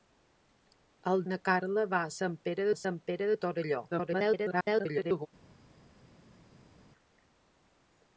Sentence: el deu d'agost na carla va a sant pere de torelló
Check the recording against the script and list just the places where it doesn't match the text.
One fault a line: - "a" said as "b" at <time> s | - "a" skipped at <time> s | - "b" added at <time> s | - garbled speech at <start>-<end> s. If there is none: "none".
- "deu d'agost" skipped at 1.2 s
- "a sant pere" added at 2.7 s
- garbled speech at 3.9-5.3 s